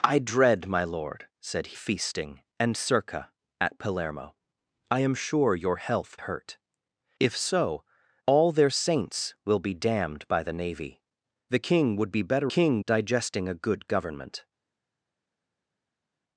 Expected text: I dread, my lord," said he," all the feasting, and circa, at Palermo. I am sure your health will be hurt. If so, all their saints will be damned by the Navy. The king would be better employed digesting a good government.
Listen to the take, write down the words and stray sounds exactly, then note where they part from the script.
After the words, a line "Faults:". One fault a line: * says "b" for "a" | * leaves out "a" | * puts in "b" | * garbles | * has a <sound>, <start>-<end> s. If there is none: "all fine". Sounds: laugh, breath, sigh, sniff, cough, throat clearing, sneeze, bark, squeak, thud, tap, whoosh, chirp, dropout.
I dread, my lord," said feasting, and circa, at Palermo. I am sure your health hurt. If so, all their saints will be damned by the Navy. The king would be better king digesting a good government.
Faults:
* leaves out "he all the"
* leaves out "will be"
* says "king" for "employed"